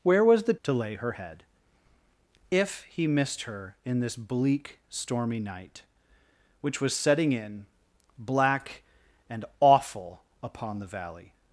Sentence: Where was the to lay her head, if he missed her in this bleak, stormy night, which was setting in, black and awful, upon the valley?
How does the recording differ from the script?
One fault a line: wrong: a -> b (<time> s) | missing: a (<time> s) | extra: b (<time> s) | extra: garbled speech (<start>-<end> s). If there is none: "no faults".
no faults